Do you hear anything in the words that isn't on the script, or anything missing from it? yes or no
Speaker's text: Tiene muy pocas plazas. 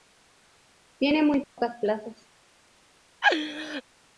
no